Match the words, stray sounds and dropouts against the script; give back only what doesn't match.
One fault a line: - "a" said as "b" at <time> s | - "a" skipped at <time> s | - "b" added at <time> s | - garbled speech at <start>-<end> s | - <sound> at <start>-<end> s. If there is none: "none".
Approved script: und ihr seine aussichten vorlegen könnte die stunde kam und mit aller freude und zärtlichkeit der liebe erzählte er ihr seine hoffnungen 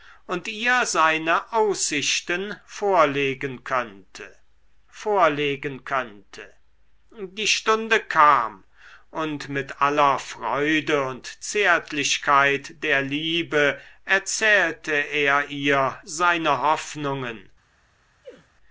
- "vorlegen könnte" added at 4.9 s
- sneeze at 18.2-18.5 s